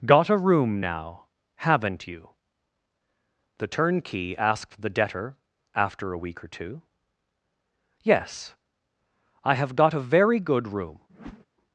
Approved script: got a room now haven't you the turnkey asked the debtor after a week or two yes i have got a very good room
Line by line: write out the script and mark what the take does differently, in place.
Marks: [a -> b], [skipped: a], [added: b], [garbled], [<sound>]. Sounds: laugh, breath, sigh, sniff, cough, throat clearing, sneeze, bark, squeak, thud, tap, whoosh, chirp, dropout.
got a room now haven't you the turnkey asked the debtor after a week or two yes i have got a very good room [whoosh]